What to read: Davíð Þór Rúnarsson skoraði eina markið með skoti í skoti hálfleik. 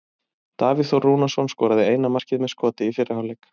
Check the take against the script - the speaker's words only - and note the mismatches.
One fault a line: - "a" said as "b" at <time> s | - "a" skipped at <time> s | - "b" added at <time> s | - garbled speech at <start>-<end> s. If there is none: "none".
- "skoti" said as "fyrri" at 3.0 s